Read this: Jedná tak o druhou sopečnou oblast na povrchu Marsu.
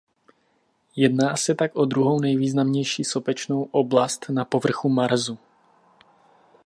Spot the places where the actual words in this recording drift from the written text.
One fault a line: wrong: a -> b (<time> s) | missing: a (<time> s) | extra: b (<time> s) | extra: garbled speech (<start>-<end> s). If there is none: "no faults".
extra: se (1.4 s)
extra: nejvýznamnější (2.2 s)